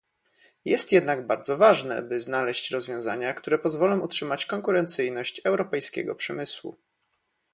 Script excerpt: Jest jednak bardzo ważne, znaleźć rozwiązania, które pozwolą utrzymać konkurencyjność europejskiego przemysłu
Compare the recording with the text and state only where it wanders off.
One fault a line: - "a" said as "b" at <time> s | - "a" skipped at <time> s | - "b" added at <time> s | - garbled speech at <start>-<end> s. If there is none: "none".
- "by" added at 2.0 s